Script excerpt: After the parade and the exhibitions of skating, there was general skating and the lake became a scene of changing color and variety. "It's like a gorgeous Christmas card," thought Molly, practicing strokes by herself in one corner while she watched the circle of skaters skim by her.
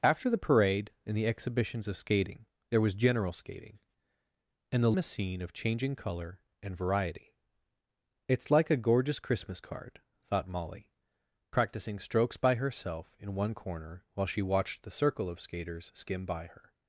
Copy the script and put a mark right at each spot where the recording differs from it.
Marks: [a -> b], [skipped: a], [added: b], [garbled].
After the parade and the exhibitions of skating, there was general skating and the [skipped: lake became] a scene of changing color and variety. "It's like a gorgeous Christmas card," thought Molly, practicing strokes by herself in one corner while she watched the circle of skaters skim by her.